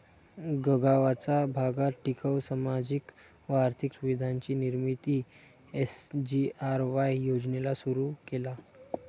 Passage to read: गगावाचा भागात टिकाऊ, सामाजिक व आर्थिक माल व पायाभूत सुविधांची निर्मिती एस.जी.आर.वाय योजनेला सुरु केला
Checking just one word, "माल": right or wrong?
wrong